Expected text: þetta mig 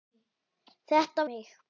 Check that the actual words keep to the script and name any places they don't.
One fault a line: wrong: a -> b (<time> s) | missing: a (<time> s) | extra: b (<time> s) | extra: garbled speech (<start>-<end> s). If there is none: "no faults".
no faults